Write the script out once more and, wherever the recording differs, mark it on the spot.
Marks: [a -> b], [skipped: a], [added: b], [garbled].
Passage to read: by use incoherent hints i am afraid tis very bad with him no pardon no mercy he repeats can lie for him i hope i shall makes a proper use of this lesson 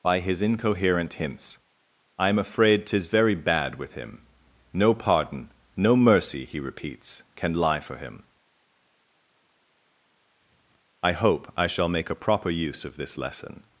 by [use -> his] incoherent hints i am afraid tis very bad with him no pardon no mercy he repeats can lie for him i hope i shall [makes -> make] a proper use of this lesson